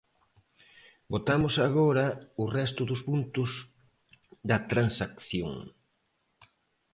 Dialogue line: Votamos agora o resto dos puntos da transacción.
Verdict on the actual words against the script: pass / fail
pass